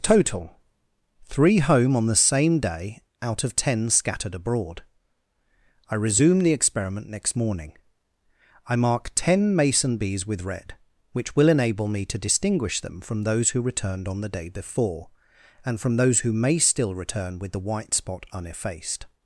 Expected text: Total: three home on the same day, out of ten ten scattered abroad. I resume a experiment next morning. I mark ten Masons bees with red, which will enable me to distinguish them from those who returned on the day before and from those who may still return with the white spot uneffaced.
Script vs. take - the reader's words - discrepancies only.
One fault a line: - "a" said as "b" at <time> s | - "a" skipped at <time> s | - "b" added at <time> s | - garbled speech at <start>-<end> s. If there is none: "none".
- "ten" skipped at 3.9 s
- "a" said as "the" at 6.4 s
- "Masons" said as "Mason" at 9.6 s